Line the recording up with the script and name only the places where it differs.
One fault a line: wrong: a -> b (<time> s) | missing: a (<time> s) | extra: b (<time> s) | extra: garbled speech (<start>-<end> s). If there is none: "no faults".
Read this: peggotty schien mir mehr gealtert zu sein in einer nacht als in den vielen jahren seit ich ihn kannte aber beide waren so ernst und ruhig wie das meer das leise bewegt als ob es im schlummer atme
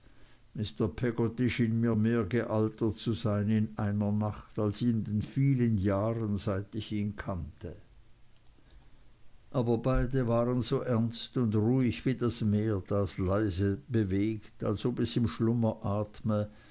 no faults